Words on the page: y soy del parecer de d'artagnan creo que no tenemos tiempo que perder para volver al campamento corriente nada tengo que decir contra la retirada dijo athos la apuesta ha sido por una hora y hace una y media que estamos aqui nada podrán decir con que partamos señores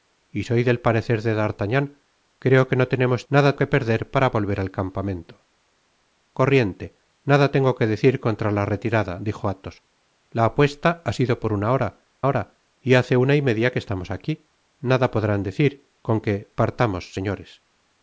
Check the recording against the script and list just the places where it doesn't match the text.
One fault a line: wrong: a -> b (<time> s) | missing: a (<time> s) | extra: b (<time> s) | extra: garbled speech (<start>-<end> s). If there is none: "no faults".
wrong: tiempo -> nada (3.3 s)
extra: hora (12.3 s)